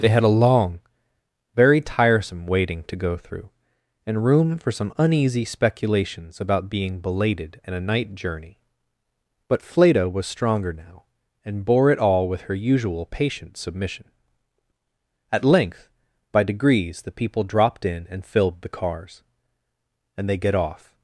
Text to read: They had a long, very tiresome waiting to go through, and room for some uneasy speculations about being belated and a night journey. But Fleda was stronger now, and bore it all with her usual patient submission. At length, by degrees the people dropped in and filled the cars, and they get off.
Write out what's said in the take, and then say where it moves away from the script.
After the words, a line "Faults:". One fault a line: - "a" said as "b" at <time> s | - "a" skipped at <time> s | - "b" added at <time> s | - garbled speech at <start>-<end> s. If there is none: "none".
They had a long, very tiresome waiting to go through, and room for some uneasy speculations about being belated and a night journey. But Fleda was stronger now, and bore it all with her usual patient submission. At length, by degrees the people dropped in and filled the cars, and they get off.
Faults:
none